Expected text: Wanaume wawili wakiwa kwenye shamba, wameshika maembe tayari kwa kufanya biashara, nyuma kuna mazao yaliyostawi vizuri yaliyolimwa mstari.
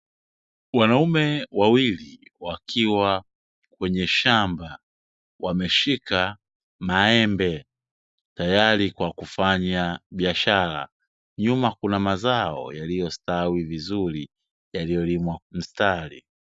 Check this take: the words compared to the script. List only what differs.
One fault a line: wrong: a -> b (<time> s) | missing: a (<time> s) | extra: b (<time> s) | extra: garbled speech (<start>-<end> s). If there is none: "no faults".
no faults